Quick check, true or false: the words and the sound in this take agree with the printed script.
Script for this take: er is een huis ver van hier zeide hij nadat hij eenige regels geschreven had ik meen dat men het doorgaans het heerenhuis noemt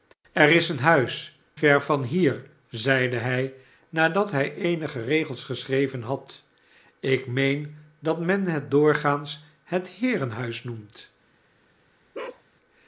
false